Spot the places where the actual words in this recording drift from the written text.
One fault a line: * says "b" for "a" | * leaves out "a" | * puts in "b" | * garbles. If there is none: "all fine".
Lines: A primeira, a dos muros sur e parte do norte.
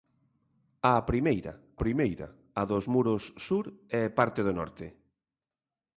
* puts in "primeira"